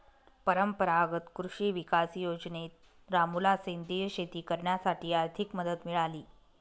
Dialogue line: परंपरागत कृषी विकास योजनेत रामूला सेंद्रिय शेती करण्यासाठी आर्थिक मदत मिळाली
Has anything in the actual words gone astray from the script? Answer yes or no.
no